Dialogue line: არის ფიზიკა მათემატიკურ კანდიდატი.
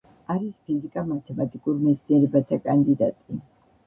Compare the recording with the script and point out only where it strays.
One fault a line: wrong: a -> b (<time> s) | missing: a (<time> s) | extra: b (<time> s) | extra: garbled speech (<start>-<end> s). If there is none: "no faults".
extra: მეცნიერებათა (1.8 s)